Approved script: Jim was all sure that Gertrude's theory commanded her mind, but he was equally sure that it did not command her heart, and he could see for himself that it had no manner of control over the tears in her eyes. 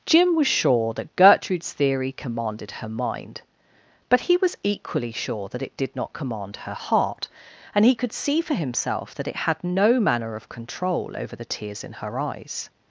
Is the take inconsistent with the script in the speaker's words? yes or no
yes